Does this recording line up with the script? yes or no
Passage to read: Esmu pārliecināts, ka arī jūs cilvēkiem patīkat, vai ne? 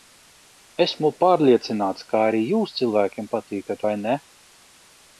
yes